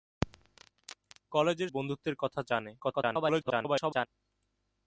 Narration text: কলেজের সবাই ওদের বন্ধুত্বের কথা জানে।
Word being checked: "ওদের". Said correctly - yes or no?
no